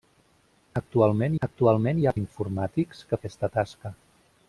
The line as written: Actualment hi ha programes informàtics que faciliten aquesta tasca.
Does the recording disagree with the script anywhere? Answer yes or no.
yes